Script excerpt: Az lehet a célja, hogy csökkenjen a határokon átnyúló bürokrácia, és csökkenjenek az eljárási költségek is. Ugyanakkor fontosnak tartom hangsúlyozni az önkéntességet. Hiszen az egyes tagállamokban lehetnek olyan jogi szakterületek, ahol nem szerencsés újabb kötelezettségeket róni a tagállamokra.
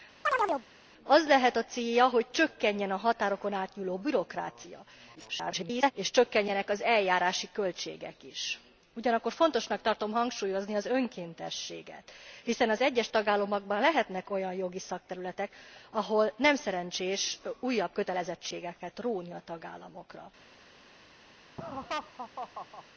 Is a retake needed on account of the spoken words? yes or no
yes